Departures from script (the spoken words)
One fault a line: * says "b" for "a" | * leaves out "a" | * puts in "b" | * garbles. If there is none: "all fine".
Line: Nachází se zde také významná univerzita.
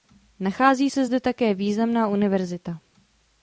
all fine